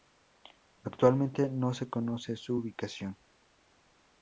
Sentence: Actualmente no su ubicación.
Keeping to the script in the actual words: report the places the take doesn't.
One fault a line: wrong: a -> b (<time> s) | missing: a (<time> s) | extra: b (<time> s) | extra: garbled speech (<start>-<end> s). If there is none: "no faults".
extra: se conoce (1.8 s)